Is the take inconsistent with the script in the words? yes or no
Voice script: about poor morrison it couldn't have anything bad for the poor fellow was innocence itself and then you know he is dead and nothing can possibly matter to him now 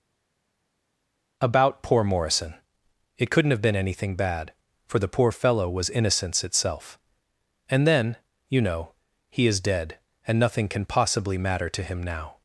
yes